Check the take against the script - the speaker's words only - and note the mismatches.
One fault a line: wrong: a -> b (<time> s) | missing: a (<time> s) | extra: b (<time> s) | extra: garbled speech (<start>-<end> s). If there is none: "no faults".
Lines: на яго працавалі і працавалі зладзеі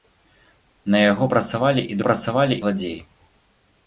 no faults